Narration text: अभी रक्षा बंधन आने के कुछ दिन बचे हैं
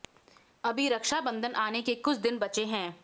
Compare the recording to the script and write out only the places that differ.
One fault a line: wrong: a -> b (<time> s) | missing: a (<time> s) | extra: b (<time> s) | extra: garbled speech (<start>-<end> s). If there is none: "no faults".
no faults